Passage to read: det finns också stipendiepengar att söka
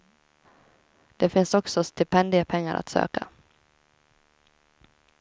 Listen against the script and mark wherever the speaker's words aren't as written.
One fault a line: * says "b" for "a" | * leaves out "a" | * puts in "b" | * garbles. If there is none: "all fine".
all fine